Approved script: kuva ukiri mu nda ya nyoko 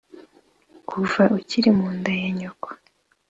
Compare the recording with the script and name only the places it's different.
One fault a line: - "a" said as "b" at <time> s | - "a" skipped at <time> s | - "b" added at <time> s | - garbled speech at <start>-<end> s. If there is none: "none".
none